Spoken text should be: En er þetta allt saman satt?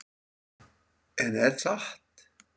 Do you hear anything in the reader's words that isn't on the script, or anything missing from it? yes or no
yes